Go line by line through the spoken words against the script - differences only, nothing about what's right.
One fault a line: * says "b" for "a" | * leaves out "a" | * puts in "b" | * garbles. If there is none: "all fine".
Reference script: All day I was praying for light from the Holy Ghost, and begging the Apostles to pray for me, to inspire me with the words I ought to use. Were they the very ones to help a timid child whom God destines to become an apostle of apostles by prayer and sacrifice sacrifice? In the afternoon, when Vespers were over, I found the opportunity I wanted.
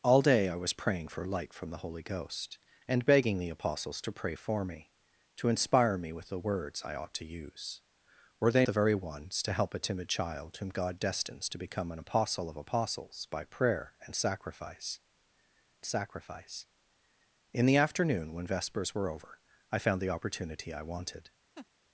all fine